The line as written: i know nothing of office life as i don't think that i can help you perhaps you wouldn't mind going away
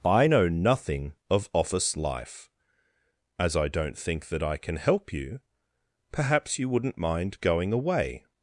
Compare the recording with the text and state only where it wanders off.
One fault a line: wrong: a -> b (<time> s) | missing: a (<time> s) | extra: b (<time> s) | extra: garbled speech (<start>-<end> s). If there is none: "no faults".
no faults